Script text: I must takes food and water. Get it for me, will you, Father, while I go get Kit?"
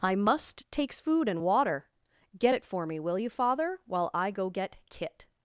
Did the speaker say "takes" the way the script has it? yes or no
yes